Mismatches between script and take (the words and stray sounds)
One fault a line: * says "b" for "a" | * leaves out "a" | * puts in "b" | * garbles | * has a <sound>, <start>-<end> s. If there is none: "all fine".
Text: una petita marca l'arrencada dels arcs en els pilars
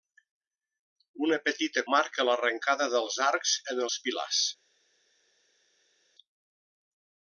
all fine